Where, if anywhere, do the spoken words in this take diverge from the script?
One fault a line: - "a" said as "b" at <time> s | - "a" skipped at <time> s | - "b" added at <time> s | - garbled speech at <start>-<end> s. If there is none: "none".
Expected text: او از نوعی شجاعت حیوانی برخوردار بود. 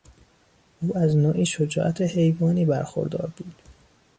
none